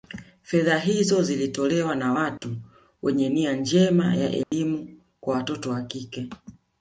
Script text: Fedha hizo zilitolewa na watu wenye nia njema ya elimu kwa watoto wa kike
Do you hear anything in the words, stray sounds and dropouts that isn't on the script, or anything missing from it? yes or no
yes